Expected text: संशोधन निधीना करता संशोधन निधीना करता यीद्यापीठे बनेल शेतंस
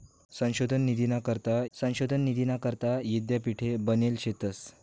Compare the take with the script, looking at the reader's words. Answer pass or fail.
pass